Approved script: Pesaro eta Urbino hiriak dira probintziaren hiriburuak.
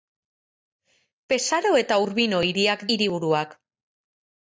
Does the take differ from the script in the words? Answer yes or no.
yes